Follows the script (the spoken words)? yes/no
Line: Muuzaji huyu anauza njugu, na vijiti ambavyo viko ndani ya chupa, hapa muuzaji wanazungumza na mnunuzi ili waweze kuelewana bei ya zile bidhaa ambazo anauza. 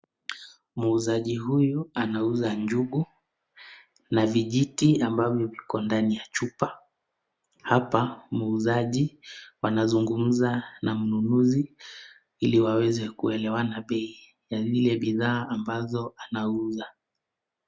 yes